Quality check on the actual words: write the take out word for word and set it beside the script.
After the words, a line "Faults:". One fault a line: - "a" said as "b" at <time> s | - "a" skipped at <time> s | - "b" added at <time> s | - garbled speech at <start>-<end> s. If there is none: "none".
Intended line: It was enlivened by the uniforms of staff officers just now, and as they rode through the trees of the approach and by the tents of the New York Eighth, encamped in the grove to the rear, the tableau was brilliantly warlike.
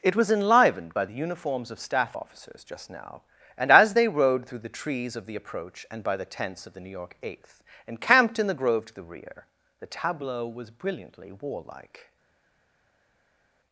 It was enlivened by the uniforms of staff officers just now, and as they rode through the trees of the approach and by the tents of the New York Eighth, encamped in the grove to the rear, the tableau was brilliantly warlike.
Faults:
none